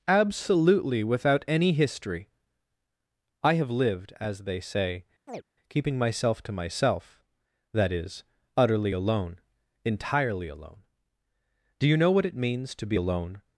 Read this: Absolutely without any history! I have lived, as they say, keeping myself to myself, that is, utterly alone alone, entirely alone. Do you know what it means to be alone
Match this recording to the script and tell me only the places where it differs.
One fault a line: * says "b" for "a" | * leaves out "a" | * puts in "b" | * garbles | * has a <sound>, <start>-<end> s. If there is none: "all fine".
* has a chirp, 5.3-5.4 s
* leaves out "alone"